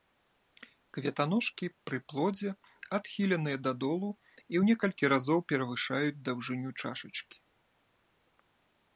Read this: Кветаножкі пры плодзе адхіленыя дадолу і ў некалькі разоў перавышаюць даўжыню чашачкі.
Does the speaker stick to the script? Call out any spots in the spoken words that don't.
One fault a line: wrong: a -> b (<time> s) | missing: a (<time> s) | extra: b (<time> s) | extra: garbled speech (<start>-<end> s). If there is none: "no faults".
no faults